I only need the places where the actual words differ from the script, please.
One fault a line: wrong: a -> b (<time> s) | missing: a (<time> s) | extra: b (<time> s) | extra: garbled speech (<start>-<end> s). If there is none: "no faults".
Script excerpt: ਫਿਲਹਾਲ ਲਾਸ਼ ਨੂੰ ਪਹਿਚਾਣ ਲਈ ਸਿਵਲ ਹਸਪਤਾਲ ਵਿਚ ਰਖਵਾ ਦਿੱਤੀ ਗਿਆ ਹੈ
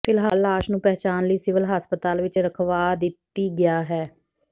no faults